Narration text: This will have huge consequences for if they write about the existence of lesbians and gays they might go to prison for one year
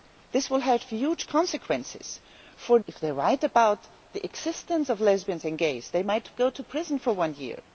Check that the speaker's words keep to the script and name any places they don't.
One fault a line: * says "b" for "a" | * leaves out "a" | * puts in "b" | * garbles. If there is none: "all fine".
all fine